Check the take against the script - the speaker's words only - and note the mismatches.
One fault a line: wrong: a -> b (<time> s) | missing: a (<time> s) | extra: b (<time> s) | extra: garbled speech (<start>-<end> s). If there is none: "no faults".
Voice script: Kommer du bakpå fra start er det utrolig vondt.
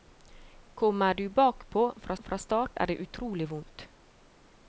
extra: fra (2.2 s)